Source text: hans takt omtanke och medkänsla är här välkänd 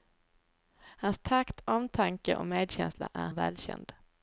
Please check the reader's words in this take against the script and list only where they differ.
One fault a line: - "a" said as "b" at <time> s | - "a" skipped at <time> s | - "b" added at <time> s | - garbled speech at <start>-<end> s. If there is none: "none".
- "här" skipped at 3.3 s